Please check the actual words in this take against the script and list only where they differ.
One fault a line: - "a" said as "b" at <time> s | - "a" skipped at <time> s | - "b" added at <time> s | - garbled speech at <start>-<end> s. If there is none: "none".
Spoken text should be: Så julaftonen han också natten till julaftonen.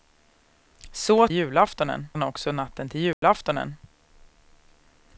none